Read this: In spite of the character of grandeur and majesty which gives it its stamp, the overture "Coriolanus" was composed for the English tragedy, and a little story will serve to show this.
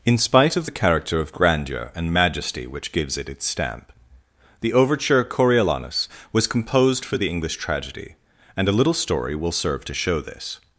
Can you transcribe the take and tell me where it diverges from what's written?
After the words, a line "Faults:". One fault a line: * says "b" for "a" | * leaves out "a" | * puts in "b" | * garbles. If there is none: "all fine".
In spite of the character of grandeur and majesty which gives it its stamp, the overture "Coriolanus" was composed for the English tragedy, and a little story will serve to show this.
Faults:
all fine